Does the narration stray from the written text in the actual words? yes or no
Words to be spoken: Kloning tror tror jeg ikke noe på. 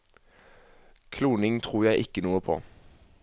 yes